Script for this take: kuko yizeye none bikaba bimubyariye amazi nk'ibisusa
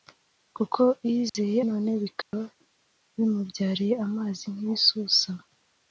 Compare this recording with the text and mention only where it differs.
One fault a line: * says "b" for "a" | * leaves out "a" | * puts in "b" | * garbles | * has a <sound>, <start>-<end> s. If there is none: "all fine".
* has a dropout, 1.3-1.3 s
* has a dropout, 2.2-2.3 s